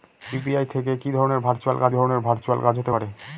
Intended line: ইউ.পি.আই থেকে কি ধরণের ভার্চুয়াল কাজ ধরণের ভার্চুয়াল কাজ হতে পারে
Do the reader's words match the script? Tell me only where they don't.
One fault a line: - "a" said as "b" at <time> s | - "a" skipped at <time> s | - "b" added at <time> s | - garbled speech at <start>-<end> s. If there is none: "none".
none